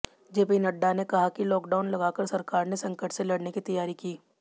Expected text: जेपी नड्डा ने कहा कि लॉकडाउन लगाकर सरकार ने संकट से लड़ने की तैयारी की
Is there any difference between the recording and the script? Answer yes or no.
no